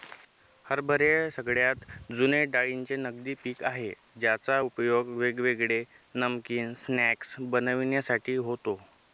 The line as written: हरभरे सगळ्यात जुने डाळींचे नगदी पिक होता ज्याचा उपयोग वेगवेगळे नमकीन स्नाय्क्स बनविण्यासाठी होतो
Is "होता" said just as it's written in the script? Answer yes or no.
no